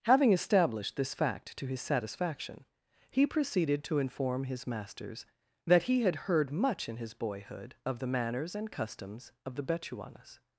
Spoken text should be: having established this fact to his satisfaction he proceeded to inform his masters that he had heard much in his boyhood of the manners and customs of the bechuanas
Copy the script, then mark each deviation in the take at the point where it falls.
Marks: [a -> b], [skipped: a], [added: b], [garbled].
having established this fact to his satisfaction he proceeded to inform his masters that he had heard much in his boyhood of the manners and customs of the bechuanas